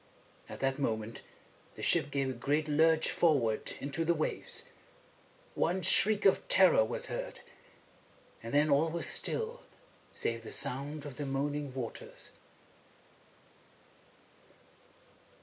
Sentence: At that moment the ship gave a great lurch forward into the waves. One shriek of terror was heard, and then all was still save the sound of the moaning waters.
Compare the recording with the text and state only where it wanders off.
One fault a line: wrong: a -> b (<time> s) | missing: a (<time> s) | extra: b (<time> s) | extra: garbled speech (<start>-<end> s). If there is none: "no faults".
no faults